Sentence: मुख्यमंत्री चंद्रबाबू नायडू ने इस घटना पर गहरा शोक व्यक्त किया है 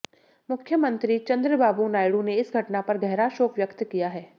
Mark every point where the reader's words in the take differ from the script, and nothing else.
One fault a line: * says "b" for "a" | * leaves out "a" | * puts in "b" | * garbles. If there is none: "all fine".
all fine